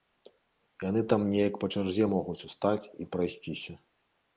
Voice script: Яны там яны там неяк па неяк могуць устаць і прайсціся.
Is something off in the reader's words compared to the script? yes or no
yes